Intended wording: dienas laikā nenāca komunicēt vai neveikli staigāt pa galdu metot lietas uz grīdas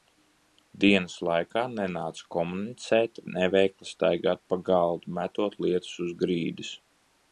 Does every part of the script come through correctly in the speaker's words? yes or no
no